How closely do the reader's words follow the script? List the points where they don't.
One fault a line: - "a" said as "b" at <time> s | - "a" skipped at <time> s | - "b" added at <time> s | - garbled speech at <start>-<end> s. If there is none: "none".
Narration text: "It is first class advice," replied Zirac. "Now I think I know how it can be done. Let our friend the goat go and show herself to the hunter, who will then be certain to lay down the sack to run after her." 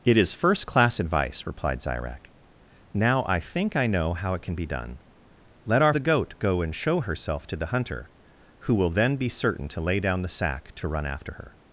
- "friend" skipped at 5.9 s